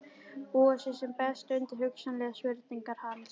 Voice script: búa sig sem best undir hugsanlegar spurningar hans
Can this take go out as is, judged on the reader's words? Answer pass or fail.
pass